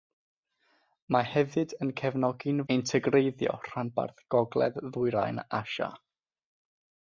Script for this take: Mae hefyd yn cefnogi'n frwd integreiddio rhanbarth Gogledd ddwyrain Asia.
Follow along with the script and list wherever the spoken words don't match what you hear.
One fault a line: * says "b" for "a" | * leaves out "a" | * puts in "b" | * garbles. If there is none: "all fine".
* leaves out "frwd"